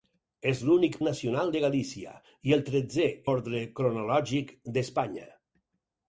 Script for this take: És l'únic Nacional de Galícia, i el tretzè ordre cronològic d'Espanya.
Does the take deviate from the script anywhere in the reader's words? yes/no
no